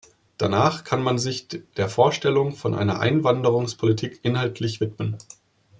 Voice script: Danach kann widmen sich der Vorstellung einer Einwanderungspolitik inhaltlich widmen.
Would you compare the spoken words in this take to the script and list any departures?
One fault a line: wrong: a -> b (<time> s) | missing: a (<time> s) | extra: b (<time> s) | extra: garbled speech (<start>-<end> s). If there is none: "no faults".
wrong: widmen -> man (1.0 s)
extra: von (2.5 s)